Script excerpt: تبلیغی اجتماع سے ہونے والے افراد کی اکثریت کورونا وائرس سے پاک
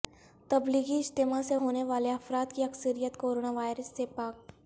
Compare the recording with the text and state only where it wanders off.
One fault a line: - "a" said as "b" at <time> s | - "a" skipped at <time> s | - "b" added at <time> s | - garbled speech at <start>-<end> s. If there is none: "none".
none